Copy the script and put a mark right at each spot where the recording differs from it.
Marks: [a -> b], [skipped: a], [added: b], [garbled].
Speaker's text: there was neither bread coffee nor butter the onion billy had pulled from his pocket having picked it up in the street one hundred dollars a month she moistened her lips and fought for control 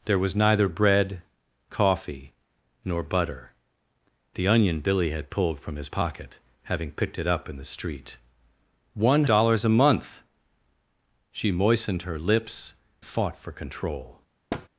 there was neither bread coffee nor butter the onion billy had pulled from his pocket having picked it up in the street one [skipped: hundred] dollars a month she moistened her lips [skipped: and] fought for control